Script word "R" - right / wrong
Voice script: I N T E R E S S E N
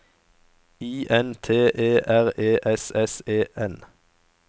right